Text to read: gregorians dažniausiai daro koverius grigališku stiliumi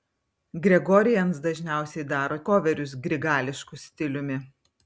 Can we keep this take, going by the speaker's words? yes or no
yes